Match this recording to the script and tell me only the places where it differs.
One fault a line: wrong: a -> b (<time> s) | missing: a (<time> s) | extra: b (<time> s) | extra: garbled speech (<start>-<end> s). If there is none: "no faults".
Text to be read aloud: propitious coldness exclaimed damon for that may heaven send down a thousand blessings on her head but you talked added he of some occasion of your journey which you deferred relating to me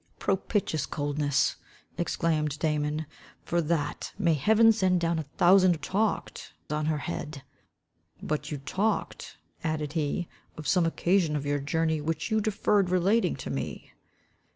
wrong: blessings -> talked (5.7 s)